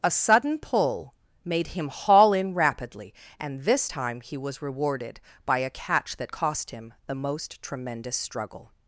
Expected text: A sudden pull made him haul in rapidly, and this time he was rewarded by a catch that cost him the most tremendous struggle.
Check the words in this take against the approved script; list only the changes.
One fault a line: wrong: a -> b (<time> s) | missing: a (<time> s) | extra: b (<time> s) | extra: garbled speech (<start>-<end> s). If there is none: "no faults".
no faults